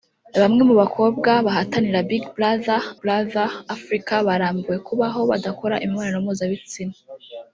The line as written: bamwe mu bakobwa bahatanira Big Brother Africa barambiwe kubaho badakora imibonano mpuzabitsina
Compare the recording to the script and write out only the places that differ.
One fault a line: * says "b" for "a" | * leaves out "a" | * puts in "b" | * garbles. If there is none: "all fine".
* puts in "Brother"